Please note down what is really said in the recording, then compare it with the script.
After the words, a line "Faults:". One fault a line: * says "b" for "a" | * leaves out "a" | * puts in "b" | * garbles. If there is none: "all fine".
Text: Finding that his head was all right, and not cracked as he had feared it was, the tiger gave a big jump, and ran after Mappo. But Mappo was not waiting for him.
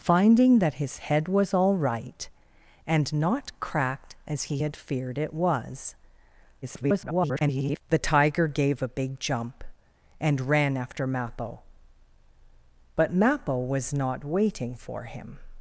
Finding that his head was all right, and not cracked as he had feared it was, [garbled] the tiger gave a big jump, and ran after Mappo. But Mappo was not waiting for him.
Faults:
* garbles